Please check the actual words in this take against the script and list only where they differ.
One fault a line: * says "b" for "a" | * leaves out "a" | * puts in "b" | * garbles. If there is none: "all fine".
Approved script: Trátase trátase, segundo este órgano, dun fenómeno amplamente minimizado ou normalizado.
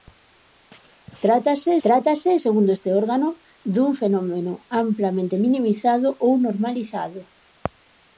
all fine